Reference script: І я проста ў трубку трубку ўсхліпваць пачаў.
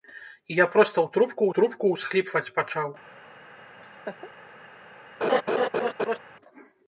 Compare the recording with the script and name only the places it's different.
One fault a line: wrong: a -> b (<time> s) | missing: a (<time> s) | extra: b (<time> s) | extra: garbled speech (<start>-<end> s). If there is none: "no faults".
no faults